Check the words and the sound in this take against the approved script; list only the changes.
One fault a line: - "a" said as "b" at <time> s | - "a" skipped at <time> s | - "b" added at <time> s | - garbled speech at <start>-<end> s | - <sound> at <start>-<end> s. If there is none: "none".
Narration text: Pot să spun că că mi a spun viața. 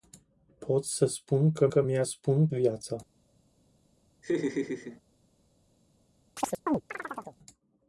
- laugh at 4.2-5.0 s
- chirp at 6.4-7.4 s